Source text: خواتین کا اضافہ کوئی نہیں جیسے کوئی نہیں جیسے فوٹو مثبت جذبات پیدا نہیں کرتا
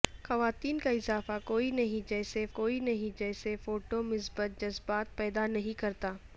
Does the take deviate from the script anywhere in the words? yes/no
no